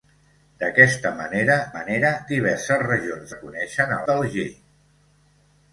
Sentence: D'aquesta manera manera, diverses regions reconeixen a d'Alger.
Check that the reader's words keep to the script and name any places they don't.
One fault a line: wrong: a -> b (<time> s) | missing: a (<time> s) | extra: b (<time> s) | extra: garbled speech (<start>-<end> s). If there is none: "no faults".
no faults